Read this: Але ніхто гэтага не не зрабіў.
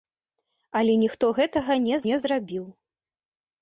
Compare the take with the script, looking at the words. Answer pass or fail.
pass